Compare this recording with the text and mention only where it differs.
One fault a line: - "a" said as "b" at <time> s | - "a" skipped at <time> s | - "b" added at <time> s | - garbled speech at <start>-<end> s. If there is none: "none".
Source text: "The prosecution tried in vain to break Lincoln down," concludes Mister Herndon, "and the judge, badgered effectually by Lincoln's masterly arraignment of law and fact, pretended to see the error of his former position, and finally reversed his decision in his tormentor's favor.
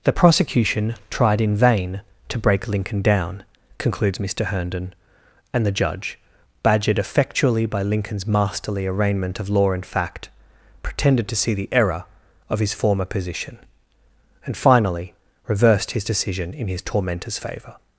none